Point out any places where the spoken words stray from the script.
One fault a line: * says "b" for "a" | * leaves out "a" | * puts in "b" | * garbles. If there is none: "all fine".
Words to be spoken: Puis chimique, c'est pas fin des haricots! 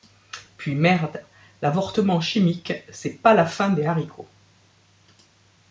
* puts in "merde l'avortement"
* puts in "la"